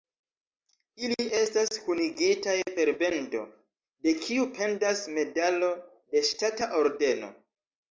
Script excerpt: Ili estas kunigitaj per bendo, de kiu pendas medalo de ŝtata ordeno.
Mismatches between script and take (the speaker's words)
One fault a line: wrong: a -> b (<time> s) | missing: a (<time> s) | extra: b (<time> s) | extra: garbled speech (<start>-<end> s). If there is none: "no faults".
no faults